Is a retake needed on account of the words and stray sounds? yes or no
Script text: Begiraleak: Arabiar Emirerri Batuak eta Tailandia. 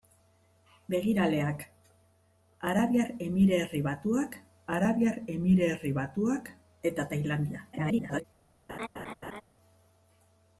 yes